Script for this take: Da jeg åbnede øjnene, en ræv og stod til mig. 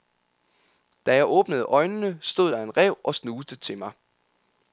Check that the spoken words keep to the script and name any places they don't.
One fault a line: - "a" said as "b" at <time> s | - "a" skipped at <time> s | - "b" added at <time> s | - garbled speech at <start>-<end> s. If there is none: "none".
- "stod der" added at 2.2 s
- "stod" said as "snuste" at 3.1 s